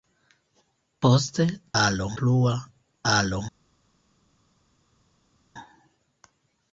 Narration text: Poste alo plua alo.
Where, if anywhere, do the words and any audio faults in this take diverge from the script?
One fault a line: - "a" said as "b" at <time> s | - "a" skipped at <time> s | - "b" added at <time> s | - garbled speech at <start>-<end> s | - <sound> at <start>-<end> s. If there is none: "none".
none